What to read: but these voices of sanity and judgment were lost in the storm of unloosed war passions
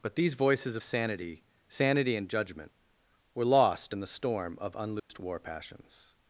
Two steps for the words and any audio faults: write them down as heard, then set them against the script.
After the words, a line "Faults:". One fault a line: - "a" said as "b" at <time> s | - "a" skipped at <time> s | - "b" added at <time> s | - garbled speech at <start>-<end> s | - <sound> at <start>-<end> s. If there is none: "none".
but these voices of sanity sanity and judgment were lost in the storm of unloosed war passions
Faults:
- "sanity" added at 1.7 s
- dropout at 5.0-5.1 s